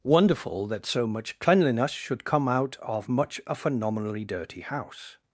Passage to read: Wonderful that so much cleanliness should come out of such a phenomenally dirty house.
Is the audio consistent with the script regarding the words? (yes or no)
no